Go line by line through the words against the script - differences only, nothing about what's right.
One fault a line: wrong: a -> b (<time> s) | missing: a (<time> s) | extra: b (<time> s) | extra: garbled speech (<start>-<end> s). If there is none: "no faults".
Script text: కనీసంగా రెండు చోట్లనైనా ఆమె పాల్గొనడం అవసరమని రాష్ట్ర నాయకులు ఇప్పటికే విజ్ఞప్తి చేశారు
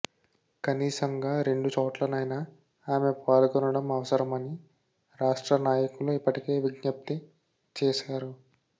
no faults